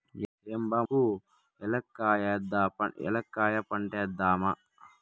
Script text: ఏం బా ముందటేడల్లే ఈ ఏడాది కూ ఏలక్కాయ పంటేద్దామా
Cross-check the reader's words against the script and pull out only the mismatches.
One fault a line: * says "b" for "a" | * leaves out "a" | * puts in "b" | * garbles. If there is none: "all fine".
* leaves out "ముందటేడల్లే ఈ ఏడాది"